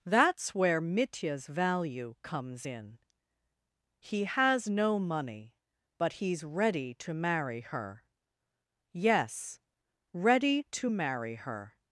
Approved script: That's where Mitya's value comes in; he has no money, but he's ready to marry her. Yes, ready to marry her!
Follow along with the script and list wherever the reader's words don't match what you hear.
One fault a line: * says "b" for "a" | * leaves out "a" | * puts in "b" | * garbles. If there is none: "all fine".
all fine